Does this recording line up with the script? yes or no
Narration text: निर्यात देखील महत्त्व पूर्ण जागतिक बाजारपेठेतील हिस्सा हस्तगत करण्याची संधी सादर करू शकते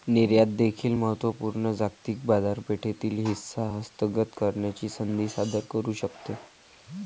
yes